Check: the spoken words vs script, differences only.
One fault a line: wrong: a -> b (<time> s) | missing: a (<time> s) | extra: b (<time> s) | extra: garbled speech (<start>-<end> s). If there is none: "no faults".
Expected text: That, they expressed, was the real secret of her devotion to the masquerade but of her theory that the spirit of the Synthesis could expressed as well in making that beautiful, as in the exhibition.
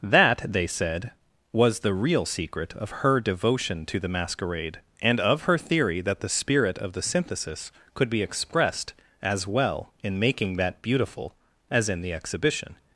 wrong: expressed -> said (0.7 s)
wrong: but -> and (5.0 s)
extra: be (8.1 s)